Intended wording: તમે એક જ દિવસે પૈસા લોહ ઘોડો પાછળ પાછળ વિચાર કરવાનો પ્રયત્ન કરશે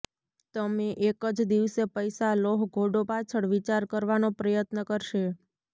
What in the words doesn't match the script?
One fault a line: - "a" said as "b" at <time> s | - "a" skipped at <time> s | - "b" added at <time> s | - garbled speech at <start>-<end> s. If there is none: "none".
- "પાછળ" skipped at 3.5 s